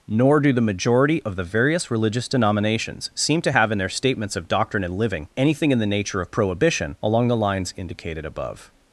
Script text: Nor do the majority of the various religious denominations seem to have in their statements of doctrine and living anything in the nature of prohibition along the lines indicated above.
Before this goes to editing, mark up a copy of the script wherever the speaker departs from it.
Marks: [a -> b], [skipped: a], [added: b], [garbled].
Nor do the majority of the various religious denominations seem to have in their statements of doctrine and living anything in the nature of prohibition along the lines indicated above.